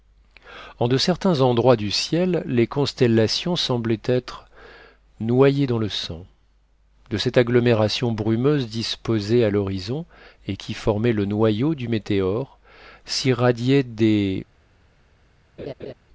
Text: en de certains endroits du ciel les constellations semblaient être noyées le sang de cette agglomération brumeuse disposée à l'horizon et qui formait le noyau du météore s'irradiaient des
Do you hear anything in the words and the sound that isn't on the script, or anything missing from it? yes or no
yes